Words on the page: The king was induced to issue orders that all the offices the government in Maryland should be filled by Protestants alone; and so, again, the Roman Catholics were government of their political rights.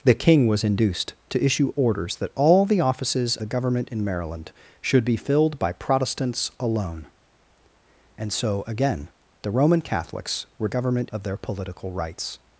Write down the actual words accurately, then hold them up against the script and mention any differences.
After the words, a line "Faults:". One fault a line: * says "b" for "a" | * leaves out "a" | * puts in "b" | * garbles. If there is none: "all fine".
The king was induced to issue orders that all the offices the government in Maryland should be filled by Protestants alone; and so, again, the Roman Catholics were government of their political rights.
Faults:
all fine